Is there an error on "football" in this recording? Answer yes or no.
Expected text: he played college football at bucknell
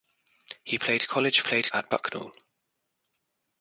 yes